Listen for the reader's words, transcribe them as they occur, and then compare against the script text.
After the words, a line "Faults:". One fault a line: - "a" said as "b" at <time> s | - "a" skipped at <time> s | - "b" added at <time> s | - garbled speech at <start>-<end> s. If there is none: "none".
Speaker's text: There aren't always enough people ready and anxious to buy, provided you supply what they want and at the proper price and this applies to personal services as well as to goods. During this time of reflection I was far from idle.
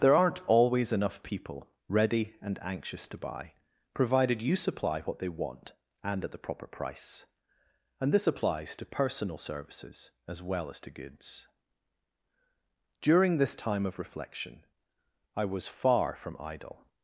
There aren't always enough people ready and anxious to buy, provided you supply what they want and at the proper price and this applies to personal services as well as to goods. During this time of reflection I was far from idle.
Faults:
none